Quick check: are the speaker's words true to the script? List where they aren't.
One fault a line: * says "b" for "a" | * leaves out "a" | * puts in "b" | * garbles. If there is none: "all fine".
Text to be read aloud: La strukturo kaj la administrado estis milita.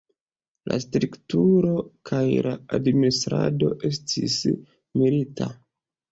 all fine